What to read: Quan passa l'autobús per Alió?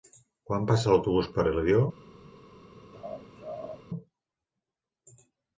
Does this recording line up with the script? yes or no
yes